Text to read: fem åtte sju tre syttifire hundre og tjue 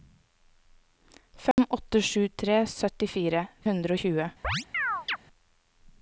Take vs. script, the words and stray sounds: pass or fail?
fail